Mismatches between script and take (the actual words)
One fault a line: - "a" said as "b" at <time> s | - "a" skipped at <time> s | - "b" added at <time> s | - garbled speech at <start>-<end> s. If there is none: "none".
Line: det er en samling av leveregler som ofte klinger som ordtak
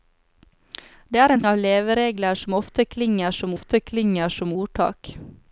- "samling" skipped at 1.4 s
- "ofte klinger som" added at 3.5 s